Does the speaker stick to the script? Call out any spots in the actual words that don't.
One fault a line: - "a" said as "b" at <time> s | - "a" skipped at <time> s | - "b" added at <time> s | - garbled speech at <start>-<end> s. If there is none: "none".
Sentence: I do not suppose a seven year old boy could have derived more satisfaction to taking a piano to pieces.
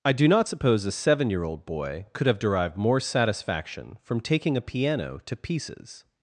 - "to" said as "from" at 4.0 s